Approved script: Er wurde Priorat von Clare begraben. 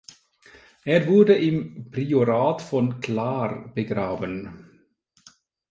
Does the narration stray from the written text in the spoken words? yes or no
yes